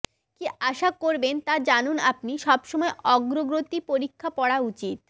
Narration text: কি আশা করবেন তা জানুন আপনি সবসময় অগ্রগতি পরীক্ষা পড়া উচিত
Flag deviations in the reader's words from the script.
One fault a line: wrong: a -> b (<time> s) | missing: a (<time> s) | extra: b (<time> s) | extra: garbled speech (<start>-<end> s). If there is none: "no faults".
no faults